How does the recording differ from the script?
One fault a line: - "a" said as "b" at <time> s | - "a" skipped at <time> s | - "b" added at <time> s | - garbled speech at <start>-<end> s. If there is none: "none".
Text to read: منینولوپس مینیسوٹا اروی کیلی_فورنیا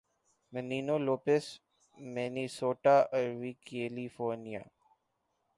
none